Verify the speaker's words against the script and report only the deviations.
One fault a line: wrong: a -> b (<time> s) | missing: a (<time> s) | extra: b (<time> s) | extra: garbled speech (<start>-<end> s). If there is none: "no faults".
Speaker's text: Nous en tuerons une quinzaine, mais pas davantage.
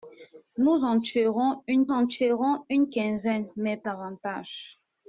extra: en tuerons une (1.9 s)
missing: pas (3.8 s)